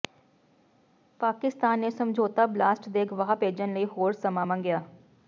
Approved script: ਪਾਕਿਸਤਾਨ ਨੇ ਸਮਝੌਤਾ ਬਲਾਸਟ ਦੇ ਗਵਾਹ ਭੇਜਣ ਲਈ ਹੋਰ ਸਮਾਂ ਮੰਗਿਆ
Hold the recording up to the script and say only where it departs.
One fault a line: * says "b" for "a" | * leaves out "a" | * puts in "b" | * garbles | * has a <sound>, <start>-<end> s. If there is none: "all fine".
all fine